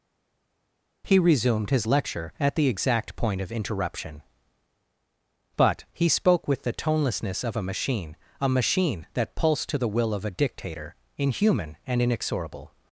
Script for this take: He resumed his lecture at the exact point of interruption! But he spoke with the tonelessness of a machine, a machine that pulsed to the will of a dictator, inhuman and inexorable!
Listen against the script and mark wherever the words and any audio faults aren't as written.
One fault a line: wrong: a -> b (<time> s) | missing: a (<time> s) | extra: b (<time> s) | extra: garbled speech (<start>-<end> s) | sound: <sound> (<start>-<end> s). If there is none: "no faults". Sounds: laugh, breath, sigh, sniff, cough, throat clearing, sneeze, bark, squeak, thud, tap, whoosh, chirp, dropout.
no faults